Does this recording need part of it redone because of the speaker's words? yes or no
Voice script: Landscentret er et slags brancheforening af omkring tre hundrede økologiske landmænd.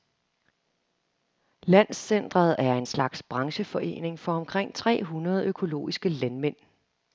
yes